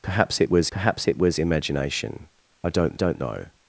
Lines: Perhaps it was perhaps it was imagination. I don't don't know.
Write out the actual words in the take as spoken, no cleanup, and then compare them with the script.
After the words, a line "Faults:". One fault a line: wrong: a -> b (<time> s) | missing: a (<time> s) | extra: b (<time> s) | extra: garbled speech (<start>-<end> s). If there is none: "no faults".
Perhaps it was perhaps it was imagination. I don't don't know.
Faults:
no faults